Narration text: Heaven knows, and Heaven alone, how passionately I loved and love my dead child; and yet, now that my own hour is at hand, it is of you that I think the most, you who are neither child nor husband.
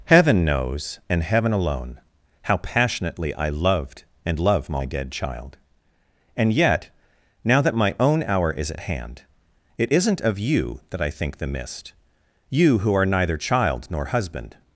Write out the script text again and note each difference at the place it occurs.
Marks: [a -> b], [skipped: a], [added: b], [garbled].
Heaven knows, and Heaven alone, how passionately I loved and love my dead child; and yet, now that my own hour is at hand, it [is -> isn't] of you that I think the [most, -> mist] you who are neither child nor husband.